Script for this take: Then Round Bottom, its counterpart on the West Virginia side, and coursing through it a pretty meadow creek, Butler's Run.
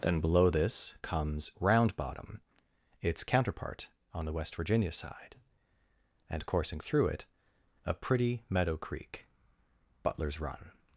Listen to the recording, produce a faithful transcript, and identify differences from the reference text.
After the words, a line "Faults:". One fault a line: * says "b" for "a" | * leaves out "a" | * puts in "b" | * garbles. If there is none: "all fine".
Then below this comes Round Bottom, its counterpart on the West Virginia side, and coursing through it a pretty meadow creek, Butler's Run.
Faults:
* puts in "below this comes"